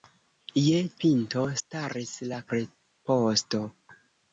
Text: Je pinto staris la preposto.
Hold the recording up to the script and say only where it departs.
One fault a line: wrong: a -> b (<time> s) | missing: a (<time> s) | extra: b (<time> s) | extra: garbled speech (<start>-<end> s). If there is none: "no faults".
no faults